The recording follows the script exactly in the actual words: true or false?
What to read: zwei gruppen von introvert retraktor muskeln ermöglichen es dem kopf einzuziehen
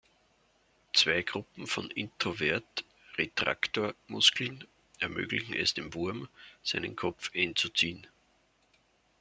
false